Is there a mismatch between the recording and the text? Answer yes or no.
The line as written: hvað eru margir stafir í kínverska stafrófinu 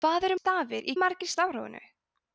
yes